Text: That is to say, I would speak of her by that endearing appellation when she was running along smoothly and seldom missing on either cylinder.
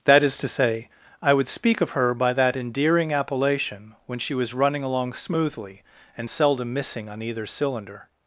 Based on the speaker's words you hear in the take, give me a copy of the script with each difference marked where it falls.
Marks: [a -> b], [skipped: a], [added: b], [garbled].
That is to say, I would speak of her by that endearing appellation when she was running along smoothly and seldom missing on either cylinder.